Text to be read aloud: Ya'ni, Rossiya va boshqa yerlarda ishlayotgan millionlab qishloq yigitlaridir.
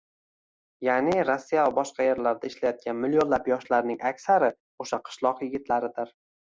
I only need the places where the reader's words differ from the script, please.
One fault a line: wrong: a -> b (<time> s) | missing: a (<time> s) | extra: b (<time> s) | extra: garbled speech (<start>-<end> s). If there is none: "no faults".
extra: yoshlarning aksari o‘sha (3.6 s)